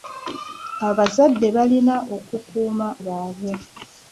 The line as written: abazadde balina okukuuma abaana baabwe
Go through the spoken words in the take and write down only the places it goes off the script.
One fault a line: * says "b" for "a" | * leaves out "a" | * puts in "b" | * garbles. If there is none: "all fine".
* leaves out "abaana"